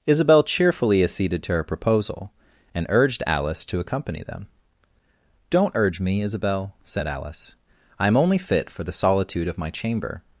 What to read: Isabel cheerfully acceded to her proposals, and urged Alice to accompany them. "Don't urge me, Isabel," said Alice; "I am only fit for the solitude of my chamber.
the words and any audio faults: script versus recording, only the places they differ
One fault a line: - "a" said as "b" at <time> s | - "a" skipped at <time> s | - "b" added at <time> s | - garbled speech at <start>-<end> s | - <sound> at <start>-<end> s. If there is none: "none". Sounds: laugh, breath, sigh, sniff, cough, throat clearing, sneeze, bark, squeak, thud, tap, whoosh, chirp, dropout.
- "proposals" said as "proposal" at 1.6 s